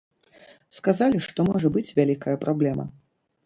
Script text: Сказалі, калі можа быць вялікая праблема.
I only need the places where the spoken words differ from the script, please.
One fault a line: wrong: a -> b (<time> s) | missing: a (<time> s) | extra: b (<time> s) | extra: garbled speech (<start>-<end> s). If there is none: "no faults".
wrong: калі -> што (1.3 s)